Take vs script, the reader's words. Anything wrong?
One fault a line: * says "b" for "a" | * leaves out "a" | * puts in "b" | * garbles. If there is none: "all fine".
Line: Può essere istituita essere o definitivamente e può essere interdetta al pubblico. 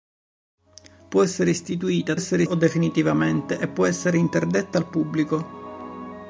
all fine